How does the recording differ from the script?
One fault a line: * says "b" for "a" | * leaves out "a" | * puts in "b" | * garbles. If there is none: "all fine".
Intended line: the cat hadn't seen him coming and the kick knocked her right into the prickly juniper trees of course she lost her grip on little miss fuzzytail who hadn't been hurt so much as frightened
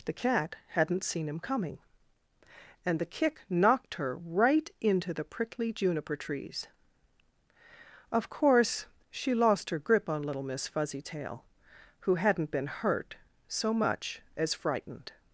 all fine